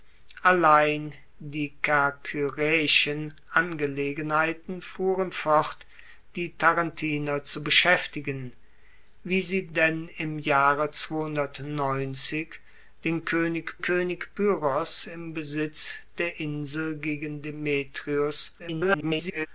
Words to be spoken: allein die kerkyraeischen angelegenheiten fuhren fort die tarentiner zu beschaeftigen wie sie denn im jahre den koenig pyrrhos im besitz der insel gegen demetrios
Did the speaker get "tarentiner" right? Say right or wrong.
right